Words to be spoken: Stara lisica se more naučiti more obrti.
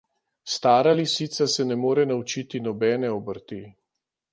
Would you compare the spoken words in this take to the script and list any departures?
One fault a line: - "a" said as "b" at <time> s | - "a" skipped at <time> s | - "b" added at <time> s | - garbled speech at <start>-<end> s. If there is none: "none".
- "ne" added at 1.6 s
- "more" said as "nobene" at 2.6 s